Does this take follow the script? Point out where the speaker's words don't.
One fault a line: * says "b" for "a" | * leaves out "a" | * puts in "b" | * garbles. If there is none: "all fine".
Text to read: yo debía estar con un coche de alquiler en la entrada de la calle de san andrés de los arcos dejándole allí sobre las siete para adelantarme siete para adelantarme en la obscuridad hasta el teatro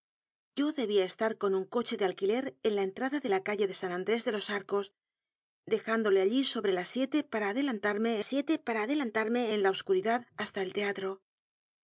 all fine